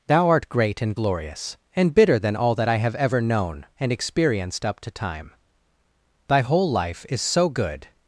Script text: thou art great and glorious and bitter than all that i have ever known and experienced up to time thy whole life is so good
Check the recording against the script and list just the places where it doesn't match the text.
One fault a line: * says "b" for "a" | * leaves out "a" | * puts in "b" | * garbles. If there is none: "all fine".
all fine